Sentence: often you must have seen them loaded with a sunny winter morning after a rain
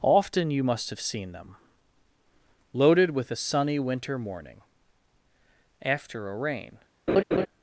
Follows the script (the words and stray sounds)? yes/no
no